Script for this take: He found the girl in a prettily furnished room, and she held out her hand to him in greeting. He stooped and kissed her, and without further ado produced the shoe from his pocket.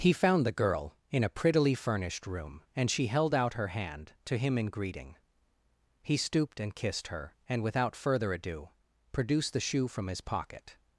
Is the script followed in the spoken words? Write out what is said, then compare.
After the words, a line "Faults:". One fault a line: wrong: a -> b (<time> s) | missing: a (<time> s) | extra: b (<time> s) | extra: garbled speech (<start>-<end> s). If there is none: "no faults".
He found the girl in a prettily furnished room, and she held out her hand to him in greeting. He stooped and kissed her, and without further ado produced the shoe from his pocket.
Faults:
no faults